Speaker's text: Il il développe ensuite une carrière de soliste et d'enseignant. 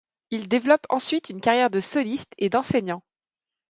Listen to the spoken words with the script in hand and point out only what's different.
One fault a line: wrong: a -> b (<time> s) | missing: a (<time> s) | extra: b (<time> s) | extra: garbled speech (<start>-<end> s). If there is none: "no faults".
missing: il (0.5 s)